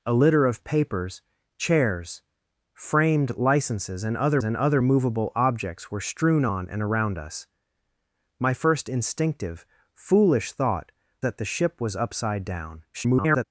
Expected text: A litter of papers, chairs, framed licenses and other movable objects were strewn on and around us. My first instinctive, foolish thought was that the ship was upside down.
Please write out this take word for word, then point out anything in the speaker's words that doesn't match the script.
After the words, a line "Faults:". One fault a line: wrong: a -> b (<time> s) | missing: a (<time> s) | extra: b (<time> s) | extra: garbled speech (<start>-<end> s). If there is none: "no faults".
A litter of papers, chairs, framed licenses and other and other movable objects were strewn on and around us. My first instinctive, foolish thought that the ship was upside down. [garbled]
Faults:
extra: and other (4.4 s)
missing: was (10.9 s)
extra: garbled speech (12.9-13.4 s)